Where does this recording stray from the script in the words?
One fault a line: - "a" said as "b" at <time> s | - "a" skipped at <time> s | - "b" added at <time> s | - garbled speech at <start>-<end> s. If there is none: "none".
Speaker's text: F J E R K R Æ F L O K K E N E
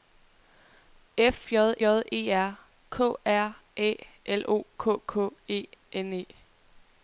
- "J" added at 1.8 s
- "F" skipped at 3.9 s